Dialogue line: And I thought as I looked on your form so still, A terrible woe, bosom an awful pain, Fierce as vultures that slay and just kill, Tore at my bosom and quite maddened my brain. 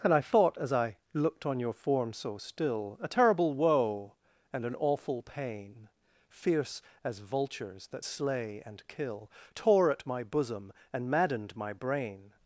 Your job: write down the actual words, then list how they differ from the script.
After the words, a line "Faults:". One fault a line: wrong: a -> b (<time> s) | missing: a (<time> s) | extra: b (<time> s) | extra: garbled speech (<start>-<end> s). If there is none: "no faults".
And I thought as I looked on your form so still, A terrible woe, and an awful pain, Fierce as vultures that slay and kill, Tore at my bosom and maddened my brain.
Faults:
wrong: bosom -> and (4.5 s)
missing: just (8.9 s)
missing: quite (11.1 s)